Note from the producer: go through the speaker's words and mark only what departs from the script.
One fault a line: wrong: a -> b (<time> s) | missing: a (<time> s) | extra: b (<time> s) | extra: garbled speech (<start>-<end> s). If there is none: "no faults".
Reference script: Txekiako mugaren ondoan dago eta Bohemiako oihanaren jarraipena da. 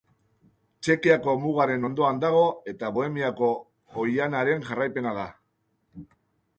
no faults